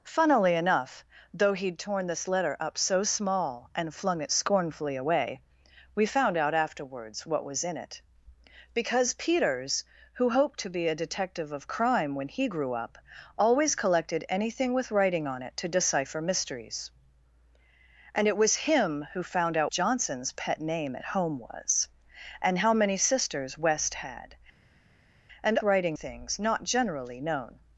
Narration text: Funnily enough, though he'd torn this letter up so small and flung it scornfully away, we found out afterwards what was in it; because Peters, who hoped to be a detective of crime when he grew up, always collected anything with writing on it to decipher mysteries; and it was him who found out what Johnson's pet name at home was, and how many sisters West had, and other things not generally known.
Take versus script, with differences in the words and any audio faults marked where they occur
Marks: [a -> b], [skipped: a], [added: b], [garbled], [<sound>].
Funnily enough, though he'd torn this letter up so small and flung it scornfully away, we found out afterwards what was in it; because Peters, who hoped to be a detective of crime when he grew up, always collected anything with writing on it to decipher mysteries; and it was him who found out [skipped: what] Johnson's pet name at home was, and how many sisters West had, and [other -> writing] things not generally known.